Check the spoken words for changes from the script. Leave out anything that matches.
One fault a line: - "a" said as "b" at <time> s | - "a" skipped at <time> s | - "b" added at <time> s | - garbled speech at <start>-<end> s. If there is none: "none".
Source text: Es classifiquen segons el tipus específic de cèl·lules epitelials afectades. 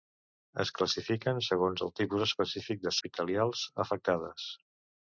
- "cèl·lules" skipped at 3.0 s